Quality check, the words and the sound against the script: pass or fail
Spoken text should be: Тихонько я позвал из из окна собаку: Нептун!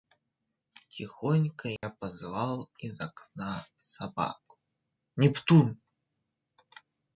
fail